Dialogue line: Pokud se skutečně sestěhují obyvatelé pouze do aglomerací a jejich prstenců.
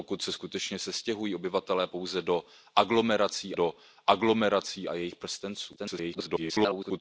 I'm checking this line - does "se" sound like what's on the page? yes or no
yes